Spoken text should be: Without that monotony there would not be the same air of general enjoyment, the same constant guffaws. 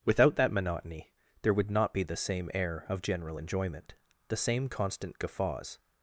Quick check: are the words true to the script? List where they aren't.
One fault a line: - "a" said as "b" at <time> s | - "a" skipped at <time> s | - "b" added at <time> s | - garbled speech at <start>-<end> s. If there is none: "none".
none